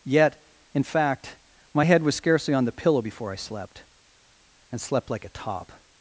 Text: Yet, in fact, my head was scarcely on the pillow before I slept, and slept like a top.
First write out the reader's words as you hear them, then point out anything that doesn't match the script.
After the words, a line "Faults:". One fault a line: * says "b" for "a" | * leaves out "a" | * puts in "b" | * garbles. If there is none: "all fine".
Yet, in fact, my head was scarcely on the pillow before I slept, and slept like a top.
Faults:
all fine